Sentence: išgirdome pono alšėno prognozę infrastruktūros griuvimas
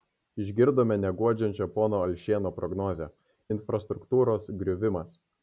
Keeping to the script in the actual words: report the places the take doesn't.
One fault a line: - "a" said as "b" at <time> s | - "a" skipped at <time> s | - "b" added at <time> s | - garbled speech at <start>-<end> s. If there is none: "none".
- "neguodžiančią" added at 1.0 s